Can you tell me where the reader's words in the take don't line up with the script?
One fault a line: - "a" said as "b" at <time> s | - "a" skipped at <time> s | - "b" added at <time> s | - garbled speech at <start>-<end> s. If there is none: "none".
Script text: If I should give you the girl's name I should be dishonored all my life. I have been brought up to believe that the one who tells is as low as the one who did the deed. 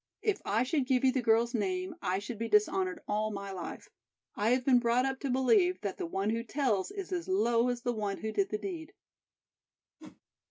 none